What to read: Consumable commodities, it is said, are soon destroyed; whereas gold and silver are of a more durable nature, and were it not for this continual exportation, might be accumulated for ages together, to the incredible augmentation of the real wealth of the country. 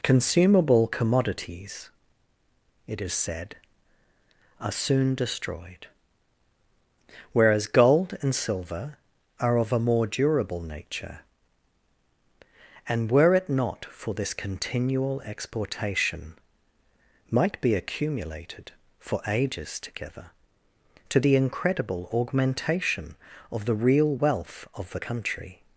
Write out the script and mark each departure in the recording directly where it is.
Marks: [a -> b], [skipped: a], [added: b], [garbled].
Consumable commodities, it is said, are soon destroyed; whereas gold and silver are of a more durable nature, and were it not for this continual exportation, might be accumulated for ages together, to the incredible augmentation of the real wealth of the country.